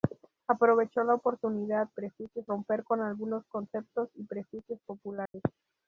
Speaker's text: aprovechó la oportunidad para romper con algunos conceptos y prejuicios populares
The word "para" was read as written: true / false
false